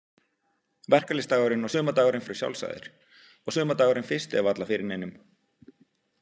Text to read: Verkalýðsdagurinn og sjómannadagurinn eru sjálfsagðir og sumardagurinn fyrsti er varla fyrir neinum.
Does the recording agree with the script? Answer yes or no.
no